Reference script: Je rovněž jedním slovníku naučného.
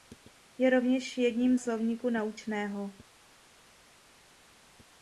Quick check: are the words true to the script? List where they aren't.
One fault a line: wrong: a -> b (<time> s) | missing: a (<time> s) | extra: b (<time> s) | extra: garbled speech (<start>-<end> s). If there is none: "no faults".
no faults